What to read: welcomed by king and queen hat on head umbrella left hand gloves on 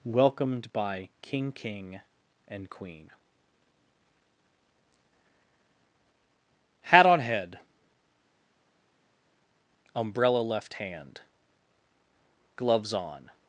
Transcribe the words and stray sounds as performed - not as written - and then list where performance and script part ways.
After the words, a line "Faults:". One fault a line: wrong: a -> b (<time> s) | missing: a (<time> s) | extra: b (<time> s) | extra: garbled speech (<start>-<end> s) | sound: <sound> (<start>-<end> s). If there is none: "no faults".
welcomed by king king and queen hat on head umbrella left hand gloves on
Faults:
extra: king (1.5 s)